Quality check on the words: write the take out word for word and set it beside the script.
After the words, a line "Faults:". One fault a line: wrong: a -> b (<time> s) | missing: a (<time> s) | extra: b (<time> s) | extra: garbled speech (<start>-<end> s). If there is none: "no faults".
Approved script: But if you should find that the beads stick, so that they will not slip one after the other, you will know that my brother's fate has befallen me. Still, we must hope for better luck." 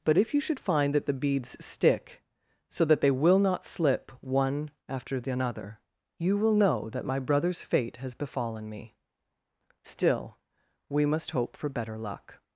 But if you should find that the beads stick, so that they will not slip one after the another, you will know that my brother's fate has befallen me. Still, we must hope for better luck."
Faults:
wrong: other -> another (5.3 s)